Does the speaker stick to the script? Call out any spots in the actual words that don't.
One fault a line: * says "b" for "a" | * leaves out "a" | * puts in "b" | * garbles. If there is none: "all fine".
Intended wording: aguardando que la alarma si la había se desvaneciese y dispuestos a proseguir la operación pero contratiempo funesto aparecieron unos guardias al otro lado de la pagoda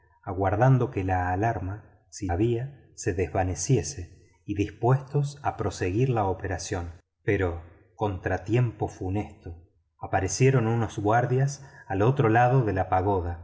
* leaves out "la"